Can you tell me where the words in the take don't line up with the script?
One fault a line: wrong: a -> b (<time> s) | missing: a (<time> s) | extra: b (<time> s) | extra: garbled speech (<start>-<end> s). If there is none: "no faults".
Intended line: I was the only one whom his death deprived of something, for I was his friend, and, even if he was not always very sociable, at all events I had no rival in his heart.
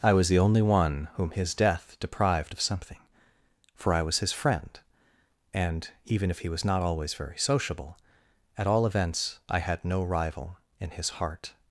no faults